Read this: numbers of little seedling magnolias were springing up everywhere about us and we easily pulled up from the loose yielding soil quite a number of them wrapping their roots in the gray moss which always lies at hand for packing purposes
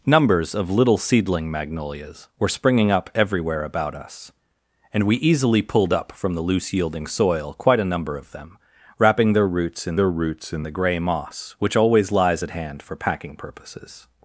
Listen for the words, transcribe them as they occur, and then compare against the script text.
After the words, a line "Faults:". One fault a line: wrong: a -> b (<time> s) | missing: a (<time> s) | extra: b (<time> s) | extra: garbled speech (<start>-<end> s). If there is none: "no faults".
numbers of little seedling magnolias were springing up everywhere about us and we easily pulled up from the loose yielding soil quite a number of them wrapping their roots in their roots in the gray moss which always lies at hand for packing purposes
Faults:
extra: their roots in (10.0 s)